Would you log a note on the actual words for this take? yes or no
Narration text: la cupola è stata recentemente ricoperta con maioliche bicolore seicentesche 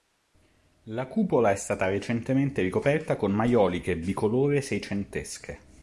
no